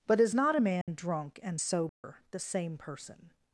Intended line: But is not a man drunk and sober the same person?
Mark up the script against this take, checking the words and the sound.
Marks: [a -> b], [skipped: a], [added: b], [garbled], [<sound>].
But is not a man [dropout] drunk and sober [dropout] the same person?